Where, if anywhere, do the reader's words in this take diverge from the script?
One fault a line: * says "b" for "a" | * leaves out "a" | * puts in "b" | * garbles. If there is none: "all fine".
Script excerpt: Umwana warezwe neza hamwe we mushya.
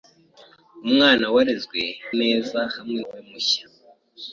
all fine